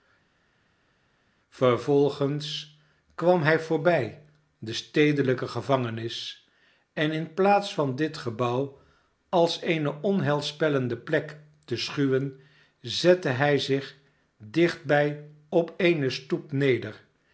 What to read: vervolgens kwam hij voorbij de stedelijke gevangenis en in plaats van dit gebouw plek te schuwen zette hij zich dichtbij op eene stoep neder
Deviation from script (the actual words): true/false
true